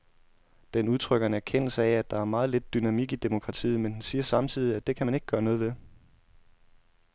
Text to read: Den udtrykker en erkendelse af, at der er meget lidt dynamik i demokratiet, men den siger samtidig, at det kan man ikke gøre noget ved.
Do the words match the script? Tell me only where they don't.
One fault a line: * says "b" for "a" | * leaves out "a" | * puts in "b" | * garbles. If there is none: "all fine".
all fine